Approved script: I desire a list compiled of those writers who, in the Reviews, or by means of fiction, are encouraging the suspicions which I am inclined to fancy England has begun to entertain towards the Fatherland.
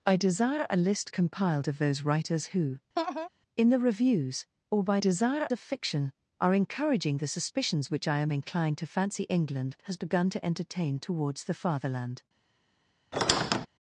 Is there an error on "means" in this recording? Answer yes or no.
yes